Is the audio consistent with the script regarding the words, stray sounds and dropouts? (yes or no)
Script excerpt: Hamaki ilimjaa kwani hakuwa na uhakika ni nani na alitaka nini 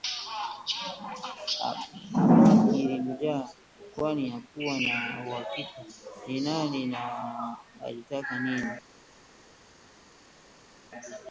yes